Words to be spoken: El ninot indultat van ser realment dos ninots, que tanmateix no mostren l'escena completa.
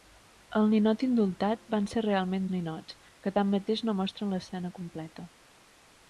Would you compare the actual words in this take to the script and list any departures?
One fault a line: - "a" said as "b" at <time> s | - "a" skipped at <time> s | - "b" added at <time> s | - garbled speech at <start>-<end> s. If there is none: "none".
- "dos" skipped at 2.5 s